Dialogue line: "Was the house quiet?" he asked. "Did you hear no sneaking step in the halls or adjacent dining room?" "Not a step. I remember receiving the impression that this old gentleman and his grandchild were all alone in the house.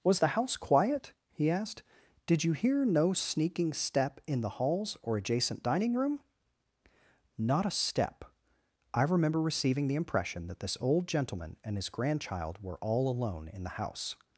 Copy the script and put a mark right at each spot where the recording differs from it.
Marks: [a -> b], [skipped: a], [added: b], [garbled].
"Was the house quiet?" he asked. "Did you hear no sneaking step in the halls or adjacent dining room?" "Not a step. I remember receiving the impression that this old gentleman and his grandchild were all alone in the house.